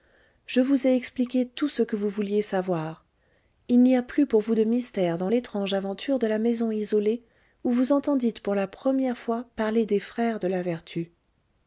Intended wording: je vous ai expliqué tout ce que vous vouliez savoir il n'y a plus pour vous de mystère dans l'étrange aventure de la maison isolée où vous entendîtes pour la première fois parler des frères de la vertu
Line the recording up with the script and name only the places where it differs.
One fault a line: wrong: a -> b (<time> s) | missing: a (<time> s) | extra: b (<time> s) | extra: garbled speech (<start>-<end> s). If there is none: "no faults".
no faults